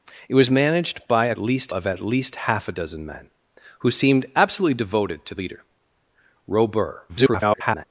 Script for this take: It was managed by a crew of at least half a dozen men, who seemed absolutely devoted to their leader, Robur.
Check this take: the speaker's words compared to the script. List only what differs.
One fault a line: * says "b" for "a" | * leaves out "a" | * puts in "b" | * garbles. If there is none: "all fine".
* says "least" for "crew"
* leaves out "their"
* garbles